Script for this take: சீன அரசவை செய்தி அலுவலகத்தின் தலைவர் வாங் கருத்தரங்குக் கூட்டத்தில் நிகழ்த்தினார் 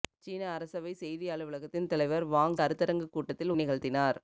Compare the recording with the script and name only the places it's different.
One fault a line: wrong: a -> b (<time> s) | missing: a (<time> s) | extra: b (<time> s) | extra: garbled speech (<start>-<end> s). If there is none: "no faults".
no faults